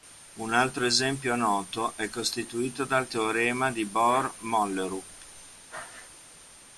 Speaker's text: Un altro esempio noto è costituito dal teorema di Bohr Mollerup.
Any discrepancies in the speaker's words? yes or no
no